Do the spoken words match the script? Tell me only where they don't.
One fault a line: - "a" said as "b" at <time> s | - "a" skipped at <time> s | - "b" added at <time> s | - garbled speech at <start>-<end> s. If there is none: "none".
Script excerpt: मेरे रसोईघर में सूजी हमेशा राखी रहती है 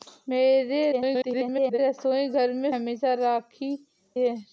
- garbled speech at 0.9-1.8 s
- "सूजी" skipped at 2.7 s
- "रहती" skipped at 3.7 s